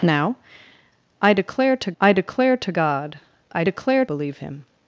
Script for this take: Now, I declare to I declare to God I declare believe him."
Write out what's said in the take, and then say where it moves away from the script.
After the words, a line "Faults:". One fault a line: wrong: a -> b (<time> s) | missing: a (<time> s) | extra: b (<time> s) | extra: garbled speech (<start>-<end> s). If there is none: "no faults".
Now, I declare to I declare to God I declare believe him."
Faults:
no faults